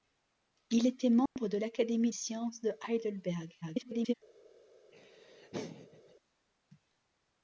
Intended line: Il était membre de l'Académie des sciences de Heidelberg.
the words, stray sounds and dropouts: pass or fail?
fail